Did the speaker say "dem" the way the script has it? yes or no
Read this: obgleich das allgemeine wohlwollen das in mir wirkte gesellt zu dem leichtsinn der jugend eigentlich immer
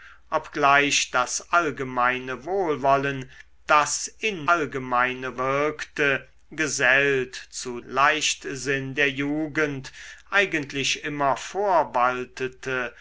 no